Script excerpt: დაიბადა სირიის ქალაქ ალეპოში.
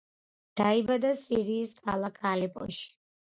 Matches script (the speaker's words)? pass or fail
pass